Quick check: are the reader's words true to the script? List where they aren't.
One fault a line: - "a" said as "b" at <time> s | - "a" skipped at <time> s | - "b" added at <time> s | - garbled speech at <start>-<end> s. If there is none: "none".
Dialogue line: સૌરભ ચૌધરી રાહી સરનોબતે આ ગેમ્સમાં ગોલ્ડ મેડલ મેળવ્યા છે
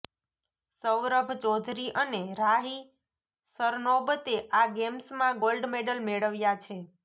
- "અને" added at 1.9 s